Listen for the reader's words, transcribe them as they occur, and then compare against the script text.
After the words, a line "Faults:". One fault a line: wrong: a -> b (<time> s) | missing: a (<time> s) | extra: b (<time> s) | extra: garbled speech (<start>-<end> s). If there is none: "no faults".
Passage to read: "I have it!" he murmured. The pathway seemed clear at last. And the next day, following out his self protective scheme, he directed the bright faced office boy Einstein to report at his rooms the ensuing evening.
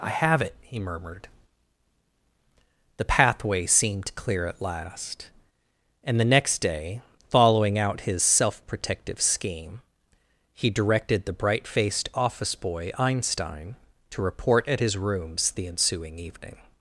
"I have it!" he murmured. The pathway seemed clear at last. And the next day, following out his self protective scheme, he directed the bright faced office boy Einstein to report at his rooms the ensuing evening.
Faults:
no faults